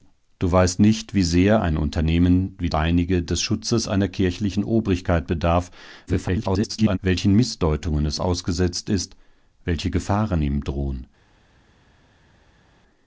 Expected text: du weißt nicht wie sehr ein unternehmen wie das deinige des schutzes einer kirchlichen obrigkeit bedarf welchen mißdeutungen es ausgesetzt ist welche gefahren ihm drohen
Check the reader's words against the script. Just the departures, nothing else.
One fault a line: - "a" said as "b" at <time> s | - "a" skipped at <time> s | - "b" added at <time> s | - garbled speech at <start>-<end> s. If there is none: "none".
- "das" skipped at 2.7 s
- garbled speech at 6.1-7.0 s